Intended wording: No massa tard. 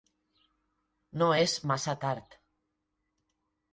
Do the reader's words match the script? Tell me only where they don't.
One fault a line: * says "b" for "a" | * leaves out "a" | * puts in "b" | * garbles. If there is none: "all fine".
* puts in "és"